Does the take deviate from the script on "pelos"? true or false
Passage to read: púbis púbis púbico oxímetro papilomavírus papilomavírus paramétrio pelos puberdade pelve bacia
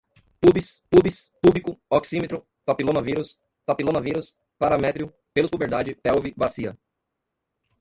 false